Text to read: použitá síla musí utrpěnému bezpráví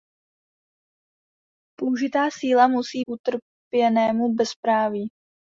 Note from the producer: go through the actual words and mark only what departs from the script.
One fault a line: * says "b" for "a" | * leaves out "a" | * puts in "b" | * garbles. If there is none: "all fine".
all fine